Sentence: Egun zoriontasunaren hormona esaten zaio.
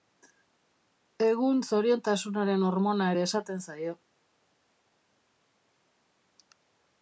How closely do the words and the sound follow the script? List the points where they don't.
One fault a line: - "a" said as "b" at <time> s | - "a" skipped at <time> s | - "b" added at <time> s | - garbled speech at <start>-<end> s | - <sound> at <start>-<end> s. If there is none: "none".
- "ere" added at 3.2 s